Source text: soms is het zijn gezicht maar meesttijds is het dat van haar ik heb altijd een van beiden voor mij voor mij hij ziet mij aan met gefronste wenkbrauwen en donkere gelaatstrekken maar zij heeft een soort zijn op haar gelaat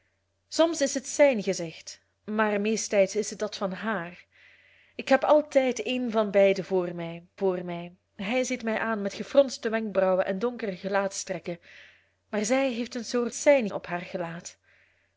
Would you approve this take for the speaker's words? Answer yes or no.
yes